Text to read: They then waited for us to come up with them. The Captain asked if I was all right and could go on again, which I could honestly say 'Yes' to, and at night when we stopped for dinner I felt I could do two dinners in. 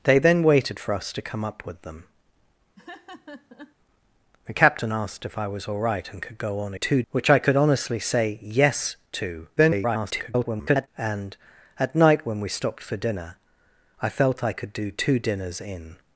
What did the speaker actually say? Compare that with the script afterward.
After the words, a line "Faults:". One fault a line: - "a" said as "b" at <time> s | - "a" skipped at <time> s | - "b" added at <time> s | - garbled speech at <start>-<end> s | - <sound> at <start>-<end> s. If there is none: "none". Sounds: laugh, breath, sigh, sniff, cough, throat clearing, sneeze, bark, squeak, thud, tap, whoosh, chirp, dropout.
They then waited for us to come up with them. The Captain asked if I was all right and could go on two, which I could honestly say 'Yes' to, [garbled] and at night when we stopped for dinner I felt I could do two dinners in.
Faults:
- laugh at 2.8-3.8 s
- "again" said as "two" at 6.7 s
- garbled speech at 9.6-10.9 s